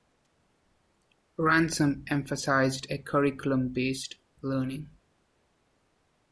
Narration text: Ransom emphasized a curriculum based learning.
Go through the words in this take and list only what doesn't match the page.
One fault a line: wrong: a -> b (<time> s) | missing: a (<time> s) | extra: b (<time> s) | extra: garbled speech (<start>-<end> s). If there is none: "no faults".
no faults